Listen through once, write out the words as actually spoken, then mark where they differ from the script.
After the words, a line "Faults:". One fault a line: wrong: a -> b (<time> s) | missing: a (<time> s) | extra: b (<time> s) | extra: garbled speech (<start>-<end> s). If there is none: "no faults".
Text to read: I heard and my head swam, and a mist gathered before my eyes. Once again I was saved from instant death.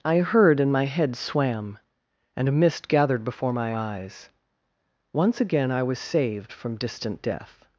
I heard and my head swam, and a mist gathered before my eyes. Once again I was saved from distant death.
Faults:
wrong: instant -> distant (6.8 s)